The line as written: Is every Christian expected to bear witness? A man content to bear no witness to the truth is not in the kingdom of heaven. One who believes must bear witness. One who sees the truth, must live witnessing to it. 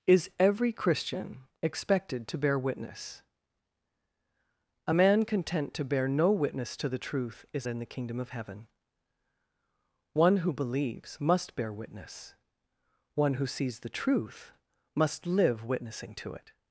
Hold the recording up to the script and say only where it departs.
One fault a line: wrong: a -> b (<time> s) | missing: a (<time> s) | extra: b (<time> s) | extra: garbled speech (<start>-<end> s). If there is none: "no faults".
missing: not (7.7 s)